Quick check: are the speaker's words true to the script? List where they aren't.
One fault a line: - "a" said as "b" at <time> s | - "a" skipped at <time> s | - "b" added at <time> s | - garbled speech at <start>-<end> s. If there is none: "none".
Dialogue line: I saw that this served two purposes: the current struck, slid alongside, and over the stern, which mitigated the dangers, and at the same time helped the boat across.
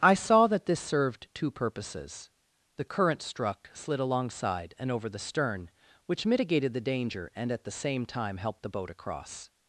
- "dangers" said as "danger" at 6.8 s